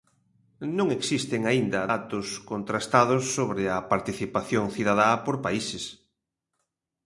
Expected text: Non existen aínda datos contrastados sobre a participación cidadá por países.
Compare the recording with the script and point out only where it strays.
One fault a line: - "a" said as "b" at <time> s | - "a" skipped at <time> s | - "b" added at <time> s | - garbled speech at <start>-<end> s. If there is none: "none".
none